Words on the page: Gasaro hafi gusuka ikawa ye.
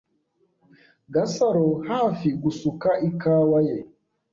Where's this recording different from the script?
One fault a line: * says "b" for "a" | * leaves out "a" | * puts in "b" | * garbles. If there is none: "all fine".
all fine